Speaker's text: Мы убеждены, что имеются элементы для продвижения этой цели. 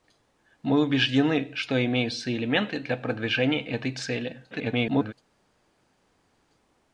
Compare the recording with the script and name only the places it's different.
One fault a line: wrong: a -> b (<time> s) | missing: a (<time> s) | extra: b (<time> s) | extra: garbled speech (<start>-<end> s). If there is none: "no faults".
extra: garbled speech (4.5-5.1 s)